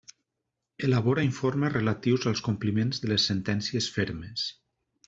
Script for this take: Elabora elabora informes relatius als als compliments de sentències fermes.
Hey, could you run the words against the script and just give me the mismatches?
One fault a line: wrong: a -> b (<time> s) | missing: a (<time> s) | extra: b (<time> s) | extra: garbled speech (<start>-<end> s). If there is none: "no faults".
missing: elabora (1.2 s)
missing: als (2.4 s)
extra: les (3.1 s)